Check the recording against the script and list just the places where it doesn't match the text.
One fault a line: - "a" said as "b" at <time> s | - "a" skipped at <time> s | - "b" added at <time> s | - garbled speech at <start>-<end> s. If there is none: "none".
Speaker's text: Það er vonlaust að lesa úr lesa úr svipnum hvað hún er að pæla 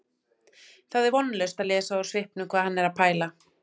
- "lesa úr" skipped at 2.1 s
- "hún" said as "hann" at 2.7 s